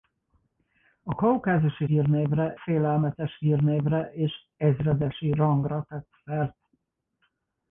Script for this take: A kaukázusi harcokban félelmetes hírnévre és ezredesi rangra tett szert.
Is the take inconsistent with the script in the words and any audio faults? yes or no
yes